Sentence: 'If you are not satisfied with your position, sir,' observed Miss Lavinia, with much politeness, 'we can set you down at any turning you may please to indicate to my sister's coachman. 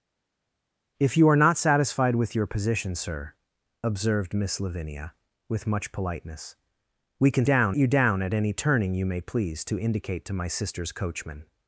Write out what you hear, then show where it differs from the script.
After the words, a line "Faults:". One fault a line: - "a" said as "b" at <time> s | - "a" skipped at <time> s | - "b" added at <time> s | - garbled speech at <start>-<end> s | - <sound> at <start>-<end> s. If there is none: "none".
'If you are not satisfied with your position, sir,' observed Miss Lavinia, with much politeness, 'we can down you down at any turning you may please to indicate to my sister's coachman.
Faults:
- "set" said as "down" at 7.4 s